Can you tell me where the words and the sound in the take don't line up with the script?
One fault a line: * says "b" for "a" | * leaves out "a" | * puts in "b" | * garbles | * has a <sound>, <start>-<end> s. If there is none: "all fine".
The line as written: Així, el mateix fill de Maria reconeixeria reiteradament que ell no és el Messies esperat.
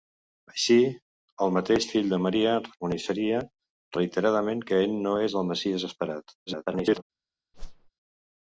* garbles
* has a whoosh, 7.5-7.9 s